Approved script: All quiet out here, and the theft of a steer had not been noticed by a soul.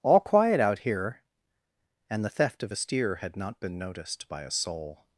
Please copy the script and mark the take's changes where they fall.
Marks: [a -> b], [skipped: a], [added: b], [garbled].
All quiet out here, and the theft of a steer had not been noticed by a soul.